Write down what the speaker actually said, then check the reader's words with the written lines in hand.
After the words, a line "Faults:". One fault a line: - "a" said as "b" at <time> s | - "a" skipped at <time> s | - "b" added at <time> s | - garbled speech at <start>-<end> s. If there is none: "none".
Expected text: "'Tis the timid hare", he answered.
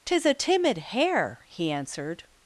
"'Tis a timid hare", he answered.
Faults:
- "the" said as "a" at 0.2 s